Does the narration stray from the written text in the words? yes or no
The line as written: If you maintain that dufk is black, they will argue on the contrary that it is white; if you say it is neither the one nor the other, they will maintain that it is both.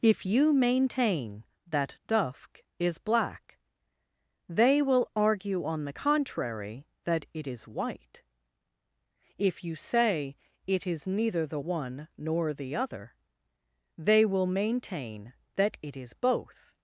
no